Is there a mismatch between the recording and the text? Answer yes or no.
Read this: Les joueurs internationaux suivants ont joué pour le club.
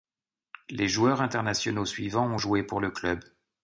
no